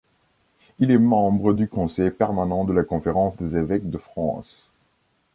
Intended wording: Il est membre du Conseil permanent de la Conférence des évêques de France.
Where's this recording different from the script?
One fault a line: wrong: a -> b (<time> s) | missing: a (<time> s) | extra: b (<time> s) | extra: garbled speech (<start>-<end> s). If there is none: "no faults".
no faults